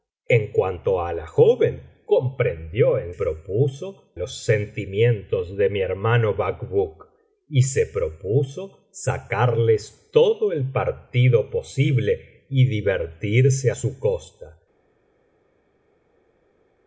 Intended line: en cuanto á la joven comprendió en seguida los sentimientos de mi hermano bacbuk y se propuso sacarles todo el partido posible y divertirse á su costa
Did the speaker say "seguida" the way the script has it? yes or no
no